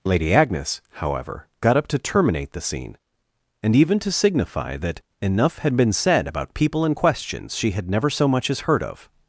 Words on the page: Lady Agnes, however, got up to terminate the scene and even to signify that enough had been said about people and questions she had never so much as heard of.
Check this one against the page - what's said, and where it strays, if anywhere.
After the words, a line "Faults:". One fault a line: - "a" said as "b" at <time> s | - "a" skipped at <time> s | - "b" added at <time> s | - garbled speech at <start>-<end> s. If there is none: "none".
Lady Agnes, however, got up to terminate the scene and even to signify that enough had been said about people and questions she had never so much as heard of.
Faults:
none